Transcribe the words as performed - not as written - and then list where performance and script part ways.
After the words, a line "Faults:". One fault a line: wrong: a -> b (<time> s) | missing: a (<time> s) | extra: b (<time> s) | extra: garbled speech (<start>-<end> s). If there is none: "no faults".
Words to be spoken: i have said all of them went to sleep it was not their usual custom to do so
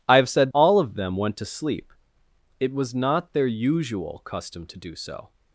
i have said all of them went to sleep it was not their usual custom to do so
Faults:
no faults